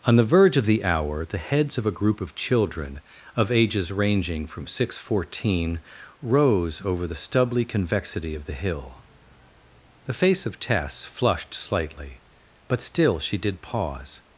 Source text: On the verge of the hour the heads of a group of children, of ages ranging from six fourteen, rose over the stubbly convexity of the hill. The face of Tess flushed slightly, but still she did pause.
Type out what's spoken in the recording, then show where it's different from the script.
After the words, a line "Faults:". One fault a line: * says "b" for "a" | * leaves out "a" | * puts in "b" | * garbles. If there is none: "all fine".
On the verge of the hour the heads of a group of children, of ages ranging from six fourteen, rose over the stubbly convexity of the hill. The face of Tess flushed slightly, but still she did pause.
Faults:
all fine